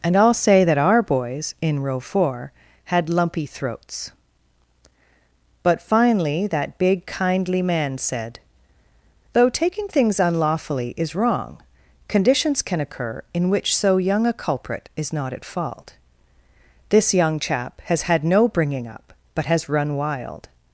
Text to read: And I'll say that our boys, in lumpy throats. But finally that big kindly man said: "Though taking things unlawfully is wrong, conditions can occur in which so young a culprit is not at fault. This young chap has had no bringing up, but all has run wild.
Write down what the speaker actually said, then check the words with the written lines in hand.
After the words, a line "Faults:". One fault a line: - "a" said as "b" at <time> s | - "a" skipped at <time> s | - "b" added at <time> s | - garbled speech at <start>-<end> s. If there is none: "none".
And I'll say that our boys, in row four, had lumpy throats. But finally that big kindly man said: "Though taking things unlawfully is wrong, conditions can occur in which so young a culprit is not at fault. This young chap has had no bringing up, but has run wild.
Faults:
- "row four had" added at 1.8 s
- "all" skipped at 19.5 s